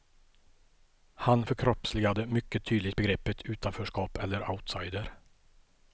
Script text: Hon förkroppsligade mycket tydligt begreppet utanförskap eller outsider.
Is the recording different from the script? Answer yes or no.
yes